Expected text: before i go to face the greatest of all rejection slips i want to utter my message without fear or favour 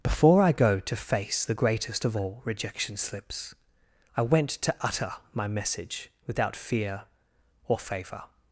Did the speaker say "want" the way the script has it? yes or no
no